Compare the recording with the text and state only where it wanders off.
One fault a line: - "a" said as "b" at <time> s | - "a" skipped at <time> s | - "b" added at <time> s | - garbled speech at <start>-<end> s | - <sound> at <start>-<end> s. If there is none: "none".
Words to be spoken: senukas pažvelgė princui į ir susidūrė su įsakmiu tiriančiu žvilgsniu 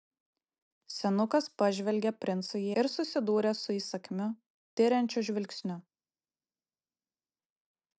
none